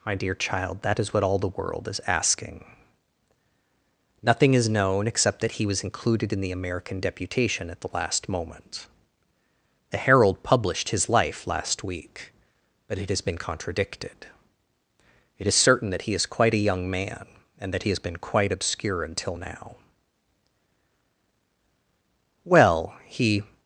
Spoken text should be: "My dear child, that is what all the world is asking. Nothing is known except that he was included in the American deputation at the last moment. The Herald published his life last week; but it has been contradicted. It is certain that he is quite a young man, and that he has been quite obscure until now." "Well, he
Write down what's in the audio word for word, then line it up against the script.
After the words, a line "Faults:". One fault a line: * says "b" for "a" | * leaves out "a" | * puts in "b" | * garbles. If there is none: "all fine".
"My dear child, that is what all the world is asking. Nothing is known except that he was included in the American deputation at the last moment. The Herald published his life last week; but it has been contradicted. It is certain that he is quite a young man, and that he has been quite obscure until now." "Well, he
Faults:
all fine